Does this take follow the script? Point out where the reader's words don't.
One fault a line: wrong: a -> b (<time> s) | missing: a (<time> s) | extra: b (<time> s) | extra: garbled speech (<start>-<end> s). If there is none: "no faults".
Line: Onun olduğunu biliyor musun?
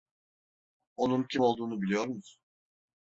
extra: kim (1.2 s)